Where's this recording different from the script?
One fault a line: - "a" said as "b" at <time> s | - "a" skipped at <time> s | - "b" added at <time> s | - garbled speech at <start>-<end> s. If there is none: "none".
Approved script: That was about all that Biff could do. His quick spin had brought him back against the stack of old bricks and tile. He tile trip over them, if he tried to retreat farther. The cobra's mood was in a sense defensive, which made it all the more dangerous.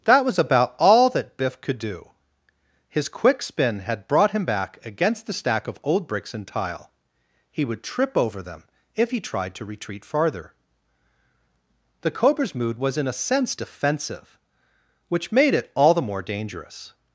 - "tile" said as "would" at 7.7 s